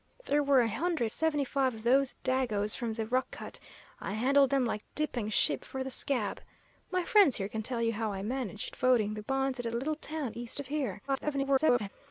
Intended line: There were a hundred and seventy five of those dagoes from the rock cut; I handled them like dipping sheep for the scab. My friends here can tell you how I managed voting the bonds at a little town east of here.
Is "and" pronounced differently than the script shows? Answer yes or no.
yes